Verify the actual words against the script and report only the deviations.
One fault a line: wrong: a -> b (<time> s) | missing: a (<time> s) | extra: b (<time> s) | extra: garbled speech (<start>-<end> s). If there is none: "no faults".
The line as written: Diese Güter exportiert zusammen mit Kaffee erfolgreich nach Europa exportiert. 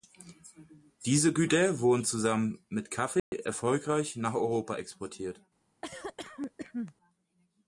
wrong: exportiert -> wurden (1.8 s)